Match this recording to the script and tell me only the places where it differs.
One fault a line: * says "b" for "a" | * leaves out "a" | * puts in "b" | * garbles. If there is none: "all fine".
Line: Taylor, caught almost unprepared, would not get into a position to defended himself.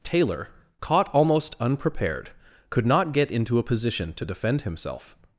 * says "could" for "would"
* says "defend" for "defended"